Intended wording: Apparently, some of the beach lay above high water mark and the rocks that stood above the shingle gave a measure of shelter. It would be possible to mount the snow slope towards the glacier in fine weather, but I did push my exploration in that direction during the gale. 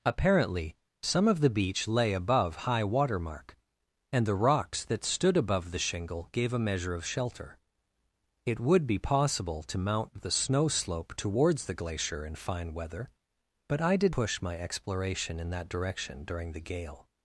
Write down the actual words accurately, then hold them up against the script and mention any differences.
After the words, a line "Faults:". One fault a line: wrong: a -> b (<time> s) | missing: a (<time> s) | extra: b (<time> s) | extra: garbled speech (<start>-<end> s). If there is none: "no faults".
Apparently, some of the beach lay above high water mark and the rocks that stood above the shingle gave a measure of shelter. It would be possible to mount the snow slope towards the glacier in fine weather, but I did push my exploration in that direction during the gale.
Faults:
no faults